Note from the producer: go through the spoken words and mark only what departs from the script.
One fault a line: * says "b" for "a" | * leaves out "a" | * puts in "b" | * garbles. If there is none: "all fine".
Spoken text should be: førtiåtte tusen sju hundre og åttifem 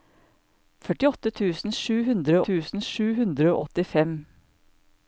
* puts in "tusen sju hundre"